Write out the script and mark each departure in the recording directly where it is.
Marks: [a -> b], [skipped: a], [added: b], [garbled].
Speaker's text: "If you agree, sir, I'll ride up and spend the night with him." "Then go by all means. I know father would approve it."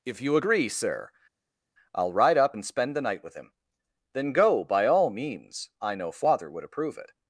"If you agree, sir, I'll ride up and spend the night with him." "Then go by all means. I know father would approve it."